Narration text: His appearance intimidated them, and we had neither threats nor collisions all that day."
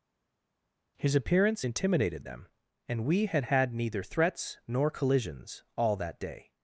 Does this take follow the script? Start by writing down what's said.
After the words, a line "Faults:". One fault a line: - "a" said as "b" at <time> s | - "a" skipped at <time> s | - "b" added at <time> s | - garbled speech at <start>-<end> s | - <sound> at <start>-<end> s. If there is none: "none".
His appearance intimidated them, and we had had neither threats nor collisions all that day."
Faults:
- "had" added at 3.4 s